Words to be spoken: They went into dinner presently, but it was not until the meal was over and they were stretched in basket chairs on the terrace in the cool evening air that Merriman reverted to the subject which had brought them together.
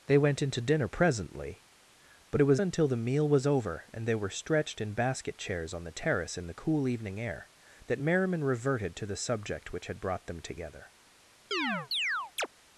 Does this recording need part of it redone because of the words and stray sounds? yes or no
yes